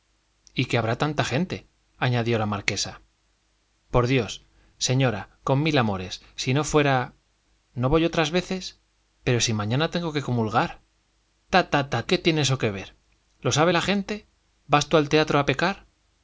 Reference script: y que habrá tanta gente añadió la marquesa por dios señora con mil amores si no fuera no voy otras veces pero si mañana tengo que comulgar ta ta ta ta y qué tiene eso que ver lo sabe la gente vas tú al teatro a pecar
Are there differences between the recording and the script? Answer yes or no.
yes